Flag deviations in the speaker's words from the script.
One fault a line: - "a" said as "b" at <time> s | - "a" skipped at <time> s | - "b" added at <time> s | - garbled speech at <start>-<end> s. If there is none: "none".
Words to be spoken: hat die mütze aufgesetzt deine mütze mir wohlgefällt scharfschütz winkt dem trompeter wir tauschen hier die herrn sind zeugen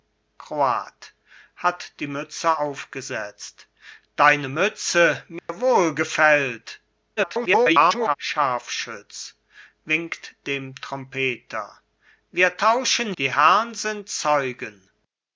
- garbled speech at 7.2-8.2 s
- "hier" skipped at 13.1 s